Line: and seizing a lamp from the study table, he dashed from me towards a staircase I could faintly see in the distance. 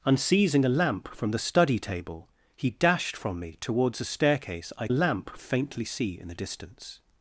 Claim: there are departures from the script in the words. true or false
true